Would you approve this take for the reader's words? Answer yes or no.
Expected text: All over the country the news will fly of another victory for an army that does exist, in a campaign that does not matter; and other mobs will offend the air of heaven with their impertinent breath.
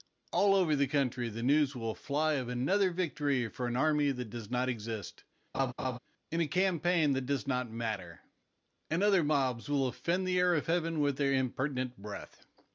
no